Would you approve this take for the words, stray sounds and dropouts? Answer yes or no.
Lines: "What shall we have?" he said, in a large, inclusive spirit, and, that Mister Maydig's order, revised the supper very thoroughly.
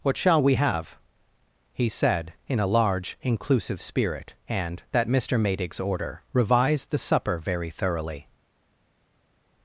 yes